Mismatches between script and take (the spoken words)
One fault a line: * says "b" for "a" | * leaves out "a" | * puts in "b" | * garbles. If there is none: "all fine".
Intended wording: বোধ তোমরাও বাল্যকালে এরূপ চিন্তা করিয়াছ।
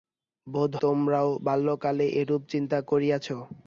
all fine